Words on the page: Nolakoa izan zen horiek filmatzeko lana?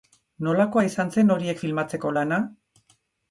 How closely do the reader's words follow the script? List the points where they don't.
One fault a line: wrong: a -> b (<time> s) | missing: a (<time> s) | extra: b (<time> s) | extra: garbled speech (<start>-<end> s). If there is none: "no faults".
no faults